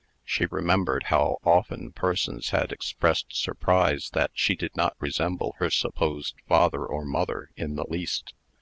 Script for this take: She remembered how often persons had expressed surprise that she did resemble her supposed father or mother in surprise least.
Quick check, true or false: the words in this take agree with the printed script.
false